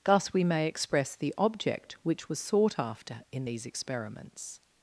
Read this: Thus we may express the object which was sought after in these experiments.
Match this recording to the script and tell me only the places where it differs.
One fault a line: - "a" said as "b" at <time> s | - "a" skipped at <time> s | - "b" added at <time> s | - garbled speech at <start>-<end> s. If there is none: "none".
none